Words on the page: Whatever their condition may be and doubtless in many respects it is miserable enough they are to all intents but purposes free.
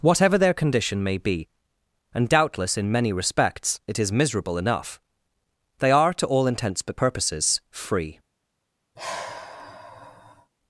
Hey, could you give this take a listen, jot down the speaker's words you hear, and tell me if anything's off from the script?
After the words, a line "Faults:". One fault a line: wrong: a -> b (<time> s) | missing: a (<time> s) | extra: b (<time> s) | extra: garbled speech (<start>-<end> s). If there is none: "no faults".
Whatever their condition may be and doubtless in many respects it is miserable enough they are to all intents but purposes free.
Faults:
no faults